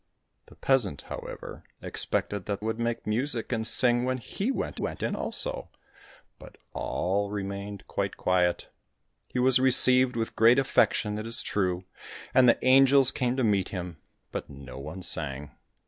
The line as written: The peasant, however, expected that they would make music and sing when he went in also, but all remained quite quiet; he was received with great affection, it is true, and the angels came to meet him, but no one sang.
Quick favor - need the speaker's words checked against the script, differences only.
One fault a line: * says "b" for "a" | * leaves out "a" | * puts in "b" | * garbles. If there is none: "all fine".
* leaves out "they"
* puts in "went"